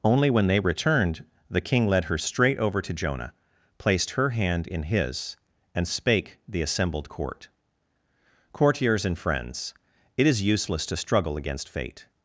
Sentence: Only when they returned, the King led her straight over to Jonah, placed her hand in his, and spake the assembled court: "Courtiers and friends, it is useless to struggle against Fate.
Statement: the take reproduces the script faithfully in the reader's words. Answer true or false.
true